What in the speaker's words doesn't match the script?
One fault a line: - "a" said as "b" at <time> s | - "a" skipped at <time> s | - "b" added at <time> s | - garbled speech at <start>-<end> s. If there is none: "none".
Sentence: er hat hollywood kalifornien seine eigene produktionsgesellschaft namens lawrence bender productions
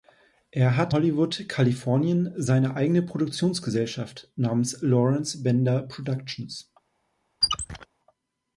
none